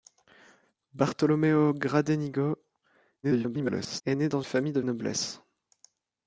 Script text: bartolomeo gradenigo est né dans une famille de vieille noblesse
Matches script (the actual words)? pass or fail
fail